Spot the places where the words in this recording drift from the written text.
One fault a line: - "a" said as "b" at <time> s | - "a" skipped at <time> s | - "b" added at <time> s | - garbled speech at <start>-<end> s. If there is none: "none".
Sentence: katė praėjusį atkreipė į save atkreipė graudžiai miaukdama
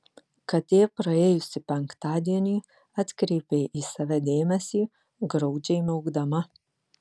- "penktadienį" added at 1.7 s
- "atkreipė" said as "dėmesį" at 4.3 s